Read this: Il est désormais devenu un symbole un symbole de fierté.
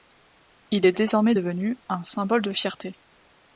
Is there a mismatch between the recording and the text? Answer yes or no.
yes